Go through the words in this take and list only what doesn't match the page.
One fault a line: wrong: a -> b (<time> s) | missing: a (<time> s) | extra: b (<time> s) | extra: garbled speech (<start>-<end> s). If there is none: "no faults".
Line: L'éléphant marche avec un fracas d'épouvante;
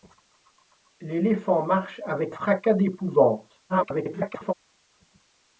missing: un (2.4 s)
extra: garbled speech (3.7-4.5 s)